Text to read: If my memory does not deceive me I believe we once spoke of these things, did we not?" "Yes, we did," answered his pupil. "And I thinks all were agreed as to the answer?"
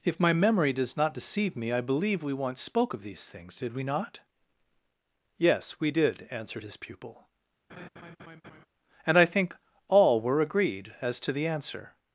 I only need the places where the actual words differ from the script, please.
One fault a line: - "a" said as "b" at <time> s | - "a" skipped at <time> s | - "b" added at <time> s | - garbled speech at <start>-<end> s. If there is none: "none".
- "thinks" said as "think" at 9.3 s